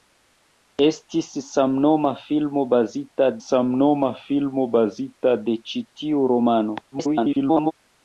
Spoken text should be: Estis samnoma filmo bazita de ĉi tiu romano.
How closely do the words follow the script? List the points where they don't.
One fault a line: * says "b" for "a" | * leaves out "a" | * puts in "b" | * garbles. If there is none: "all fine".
* puts in "samnoma filmo bazita"
* garbles